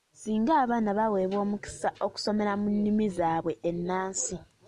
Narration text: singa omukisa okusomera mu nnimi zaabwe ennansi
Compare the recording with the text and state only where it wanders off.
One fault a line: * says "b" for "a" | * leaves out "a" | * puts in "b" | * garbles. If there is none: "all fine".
* puts in "abaana baweebwa"